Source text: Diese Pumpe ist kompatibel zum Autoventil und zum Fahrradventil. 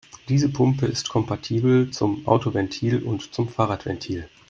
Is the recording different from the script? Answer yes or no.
no